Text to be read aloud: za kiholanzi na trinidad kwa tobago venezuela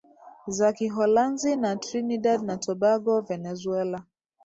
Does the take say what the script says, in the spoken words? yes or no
no